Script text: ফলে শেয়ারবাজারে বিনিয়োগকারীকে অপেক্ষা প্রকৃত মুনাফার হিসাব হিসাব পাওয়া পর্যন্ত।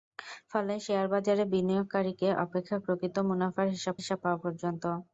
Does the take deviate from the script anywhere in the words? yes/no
no